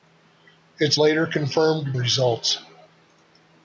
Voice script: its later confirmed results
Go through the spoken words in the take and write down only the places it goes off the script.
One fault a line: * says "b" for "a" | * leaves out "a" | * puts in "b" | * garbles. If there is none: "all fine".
all fine